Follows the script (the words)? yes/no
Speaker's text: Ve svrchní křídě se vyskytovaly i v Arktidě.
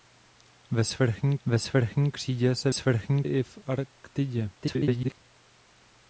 no